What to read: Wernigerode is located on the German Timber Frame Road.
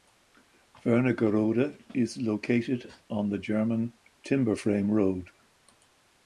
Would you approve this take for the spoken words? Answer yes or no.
yes